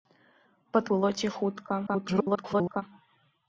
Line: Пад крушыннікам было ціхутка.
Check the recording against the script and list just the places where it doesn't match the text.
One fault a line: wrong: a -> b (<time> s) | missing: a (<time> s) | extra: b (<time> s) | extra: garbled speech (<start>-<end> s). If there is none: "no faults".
missing: крушыннікам (0.8 s)
extra: garbled speech (1.9-2.8 s)